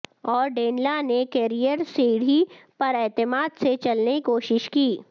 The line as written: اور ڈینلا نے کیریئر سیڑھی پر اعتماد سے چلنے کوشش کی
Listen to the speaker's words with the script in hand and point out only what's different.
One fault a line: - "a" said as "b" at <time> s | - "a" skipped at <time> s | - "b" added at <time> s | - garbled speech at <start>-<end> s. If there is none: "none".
none